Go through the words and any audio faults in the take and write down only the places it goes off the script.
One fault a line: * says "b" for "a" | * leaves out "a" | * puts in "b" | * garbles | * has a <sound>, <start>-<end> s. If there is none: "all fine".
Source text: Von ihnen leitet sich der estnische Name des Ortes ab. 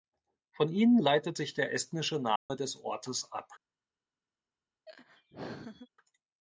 * has a dropout, 2.4-2.5 s
* has a laugh, 4.9-5.9 s